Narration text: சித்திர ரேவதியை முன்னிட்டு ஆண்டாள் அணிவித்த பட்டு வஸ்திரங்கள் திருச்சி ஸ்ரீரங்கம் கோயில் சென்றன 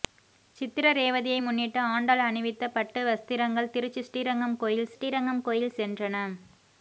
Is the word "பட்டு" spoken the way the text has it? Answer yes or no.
yes